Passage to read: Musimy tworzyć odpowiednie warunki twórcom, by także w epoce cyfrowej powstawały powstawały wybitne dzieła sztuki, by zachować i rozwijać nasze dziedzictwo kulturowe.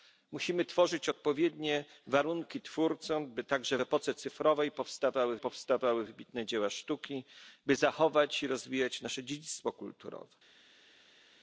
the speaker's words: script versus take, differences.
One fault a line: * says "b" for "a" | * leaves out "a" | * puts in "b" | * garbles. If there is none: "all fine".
all fine